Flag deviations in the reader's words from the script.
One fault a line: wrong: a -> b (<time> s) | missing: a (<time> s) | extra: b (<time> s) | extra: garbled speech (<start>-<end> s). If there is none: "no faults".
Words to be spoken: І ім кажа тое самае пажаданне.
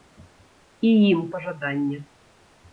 missing: кажа тое самае (1.2 s)